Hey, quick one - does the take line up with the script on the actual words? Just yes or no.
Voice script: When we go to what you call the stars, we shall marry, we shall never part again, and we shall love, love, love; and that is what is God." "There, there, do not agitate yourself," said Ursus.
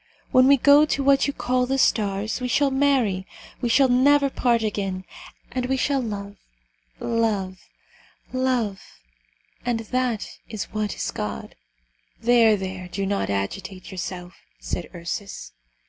yes